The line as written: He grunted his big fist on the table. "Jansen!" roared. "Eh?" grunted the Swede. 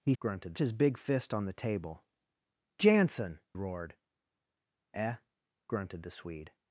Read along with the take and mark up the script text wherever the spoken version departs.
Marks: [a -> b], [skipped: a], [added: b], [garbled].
He grunted his big fist on the table. "Jansen!" roared. "Eh?" grunted the Swede.